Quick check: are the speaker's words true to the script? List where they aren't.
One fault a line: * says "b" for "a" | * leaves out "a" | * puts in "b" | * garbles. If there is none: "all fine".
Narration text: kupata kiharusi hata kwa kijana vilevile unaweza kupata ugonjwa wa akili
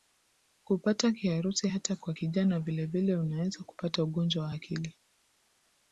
all fine